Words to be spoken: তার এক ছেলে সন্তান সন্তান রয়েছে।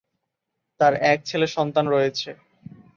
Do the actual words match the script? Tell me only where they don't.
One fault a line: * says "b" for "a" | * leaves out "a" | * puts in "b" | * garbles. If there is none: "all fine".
* leaves out "সন্তান"